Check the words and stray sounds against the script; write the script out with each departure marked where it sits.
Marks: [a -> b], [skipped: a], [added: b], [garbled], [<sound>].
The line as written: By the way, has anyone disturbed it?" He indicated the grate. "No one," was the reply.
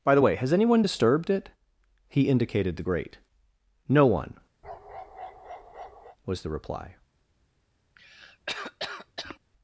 By the way, has anyone disturbed it?" He indicated the grate. "No one," [bark] was the reply. [cough]